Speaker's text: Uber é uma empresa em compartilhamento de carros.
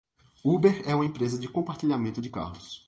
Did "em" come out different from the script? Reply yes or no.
yes